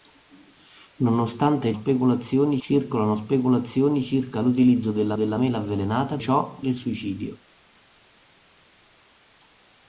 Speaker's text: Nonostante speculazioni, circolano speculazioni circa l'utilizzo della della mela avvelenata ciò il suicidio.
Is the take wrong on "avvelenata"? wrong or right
right